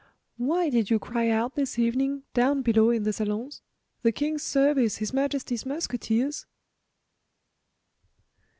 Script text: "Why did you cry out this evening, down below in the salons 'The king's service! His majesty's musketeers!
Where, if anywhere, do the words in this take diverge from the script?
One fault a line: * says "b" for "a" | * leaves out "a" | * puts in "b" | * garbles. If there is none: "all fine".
all fine